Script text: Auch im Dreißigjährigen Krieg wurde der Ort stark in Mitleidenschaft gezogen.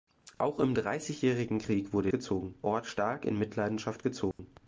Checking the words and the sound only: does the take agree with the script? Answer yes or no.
no